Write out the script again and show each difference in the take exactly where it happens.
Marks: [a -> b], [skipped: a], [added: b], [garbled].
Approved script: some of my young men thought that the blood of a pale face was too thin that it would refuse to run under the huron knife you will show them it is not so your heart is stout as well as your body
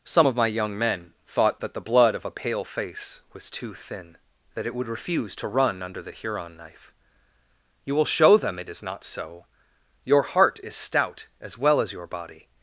some of my young men thought that the blood of a pale face was too thin that it would refuse to run under the huron knife you will show them it is not so your heart is stout as well as your body